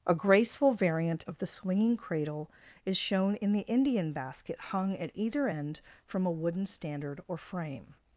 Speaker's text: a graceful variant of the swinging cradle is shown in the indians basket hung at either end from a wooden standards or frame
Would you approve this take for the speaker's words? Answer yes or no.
no